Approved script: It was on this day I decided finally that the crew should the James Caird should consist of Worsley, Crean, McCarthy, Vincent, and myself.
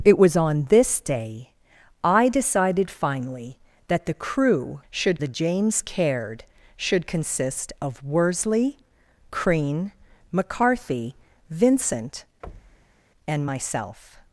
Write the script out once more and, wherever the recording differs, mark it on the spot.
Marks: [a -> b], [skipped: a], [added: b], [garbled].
It was on this day I decided finally that the crew should the James Caird should consist of Worsley, Crean, McCarthy, Vincent, and myself.